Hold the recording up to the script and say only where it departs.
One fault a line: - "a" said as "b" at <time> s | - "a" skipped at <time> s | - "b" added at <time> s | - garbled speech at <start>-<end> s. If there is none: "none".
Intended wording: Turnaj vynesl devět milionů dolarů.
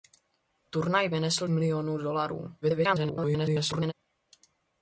- "devět" skipped at 1.5 s
- garbled speech at 2.6-3.9 s